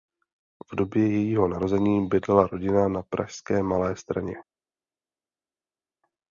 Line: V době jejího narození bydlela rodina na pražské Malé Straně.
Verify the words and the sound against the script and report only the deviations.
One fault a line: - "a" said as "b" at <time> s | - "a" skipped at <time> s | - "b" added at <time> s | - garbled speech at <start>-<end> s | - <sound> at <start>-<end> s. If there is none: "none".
none